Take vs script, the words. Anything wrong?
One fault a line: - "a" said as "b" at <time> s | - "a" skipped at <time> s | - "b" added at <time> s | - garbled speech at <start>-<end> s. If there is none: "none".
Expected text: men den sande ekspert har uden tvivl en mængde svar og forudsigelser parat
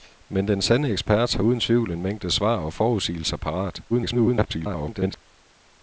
- garbled speech at 3.9-5.2 s